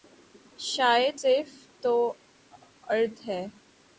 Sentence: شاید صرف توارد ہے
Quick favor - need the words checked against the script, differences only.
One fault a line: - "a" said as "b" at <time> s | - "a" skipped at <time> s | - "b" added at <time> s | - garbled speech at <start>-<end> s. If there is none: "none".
none